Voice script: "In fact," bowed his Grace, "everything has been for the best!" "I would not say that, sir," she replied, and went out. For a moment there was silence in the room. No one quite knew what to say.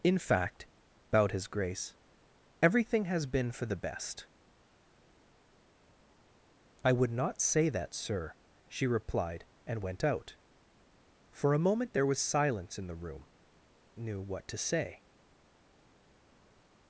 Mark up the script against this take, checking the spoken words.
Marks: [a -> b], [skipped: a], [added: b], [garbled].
"In fact," bowed his Grace, "everything has been for the best!" "I would not say that, sir," she replied, and went out. For a moment there was silence in the room. [skipped: No one quite] knew what to say.